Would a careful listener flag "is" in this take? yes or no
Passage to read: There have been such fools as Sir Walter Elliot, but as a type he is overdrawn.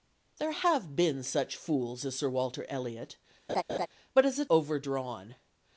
yes